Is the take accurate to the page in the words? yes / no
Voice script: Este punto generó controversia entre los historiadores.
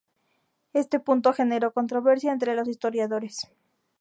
yes